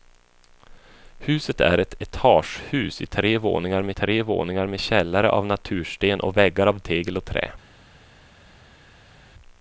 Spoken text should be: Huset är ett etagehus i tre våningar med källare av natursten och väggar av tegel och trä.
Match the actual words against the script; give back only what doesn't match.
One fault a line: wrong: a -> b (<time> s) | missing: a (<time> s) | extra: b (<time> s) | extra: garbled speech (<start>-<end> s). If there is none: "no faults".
extra: tre våningar med (3.9 s)